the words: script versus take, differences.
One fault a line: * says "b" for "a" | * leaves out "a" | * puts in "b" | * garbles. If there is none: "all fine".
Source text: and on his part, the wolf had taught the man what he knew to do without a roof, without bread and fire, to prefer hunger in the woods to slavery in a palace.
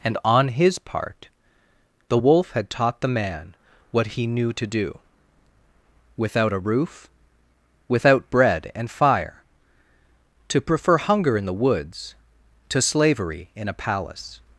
all fine